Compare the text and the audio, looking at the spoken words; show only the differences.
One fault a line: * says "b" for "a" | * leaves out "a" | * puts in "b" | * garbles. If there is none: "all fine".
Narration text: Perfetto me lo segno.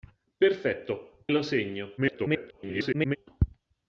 * leaves out "me"
* garbles